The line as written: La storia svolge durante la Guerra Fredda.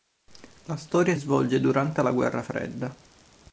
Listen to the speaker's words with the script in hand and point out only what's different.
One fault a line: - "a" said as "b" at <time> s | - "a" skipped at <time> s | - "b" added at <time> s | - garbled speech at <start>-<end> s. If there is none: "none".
none